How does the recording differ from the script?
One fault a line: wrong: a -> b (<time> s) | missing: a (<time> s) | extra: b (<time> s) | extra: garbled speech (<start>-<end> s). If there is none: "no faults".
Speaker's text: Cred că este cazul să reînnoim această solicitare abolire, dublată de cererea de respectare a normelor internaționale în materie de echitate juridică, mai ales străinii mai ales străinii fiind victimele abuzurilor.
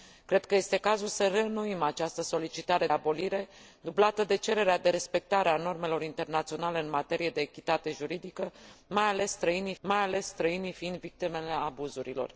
no faults